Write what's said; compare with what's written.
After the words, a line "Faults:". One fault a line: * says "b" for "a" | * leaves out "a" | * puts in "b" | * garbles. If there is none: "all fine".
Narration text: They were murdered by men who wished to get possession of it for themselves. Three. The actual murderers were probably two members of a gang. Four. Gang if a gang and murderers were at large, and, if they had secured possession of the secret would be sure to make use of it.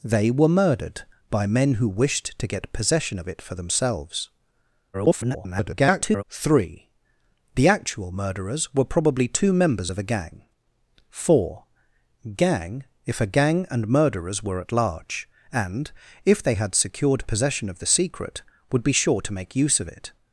They were murdered by men who wished to get possession of it for themselves. [garbled] Three. The actual murderers were probably two members of a gang. Four. Gang if a gang and murderers were at large, and, if they had secured possession of the secret would be sure to make use of it.
Faults:
* garbles